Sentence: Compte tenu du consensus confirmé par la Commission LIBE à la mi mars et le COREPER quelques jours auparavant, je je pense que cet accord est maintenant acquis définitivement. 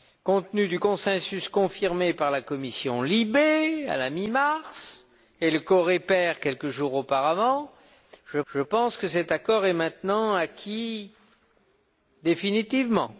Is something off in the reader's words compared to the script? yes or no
no